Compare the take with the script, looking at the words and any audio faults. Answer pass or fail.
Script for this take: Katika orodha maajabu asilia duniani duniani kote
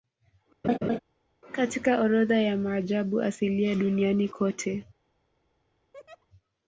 fail